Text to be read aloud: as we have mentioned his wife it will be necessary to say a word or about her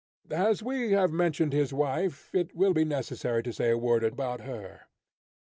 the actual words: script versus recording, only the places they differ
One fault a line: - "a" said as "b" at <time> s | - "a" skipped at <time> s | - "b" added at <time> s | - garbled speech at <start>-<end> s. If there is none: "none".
none